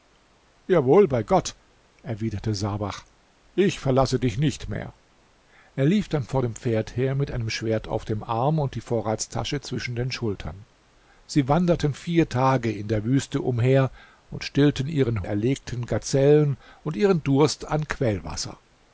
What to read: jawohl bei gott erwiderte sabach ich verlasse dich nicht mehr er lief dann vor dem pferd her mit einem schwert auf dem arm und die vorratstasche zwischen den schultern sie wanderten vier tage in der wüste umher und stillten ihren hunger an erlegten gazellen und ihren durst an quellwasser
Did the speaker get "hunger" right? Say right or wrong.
wrong